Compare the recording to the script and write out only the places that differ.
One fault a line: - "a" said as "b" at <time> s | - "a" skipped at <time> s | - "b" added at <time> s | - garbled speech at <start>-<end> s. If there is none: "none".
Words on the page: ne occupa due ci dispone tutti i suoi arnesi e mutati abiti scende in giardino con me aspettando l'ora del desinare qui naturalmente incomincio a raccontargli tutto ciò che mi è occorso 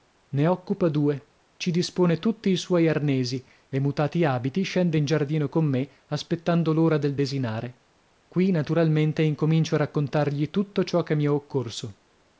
none